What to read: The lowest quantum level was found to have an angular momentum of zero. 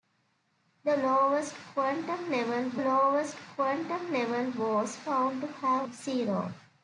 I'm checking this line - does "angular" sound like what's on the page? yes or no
no